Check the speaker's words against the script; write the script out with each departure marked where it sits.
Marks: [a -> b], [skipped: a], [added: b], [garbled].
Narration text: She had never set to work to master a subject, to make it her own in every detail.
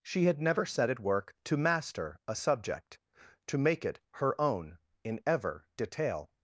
She had never set [to -> at] work to master a subject, to make it her own in [every -> ever] detail.